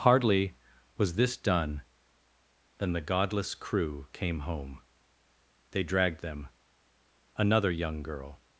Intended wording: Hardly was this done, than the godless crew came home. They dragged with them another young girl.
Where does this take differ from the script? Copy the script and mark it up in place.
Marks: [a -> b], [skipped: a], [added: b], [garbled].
Hardly was this done, than the godless crew came home. They dragged [skipped: with] them another young girl.